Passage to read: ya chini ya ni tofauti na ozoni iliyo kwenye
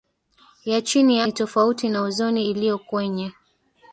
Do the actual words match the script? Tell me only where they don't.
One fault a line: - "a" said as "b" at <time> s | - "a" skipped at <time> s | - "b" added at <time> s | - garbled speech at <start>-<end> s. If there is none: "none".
none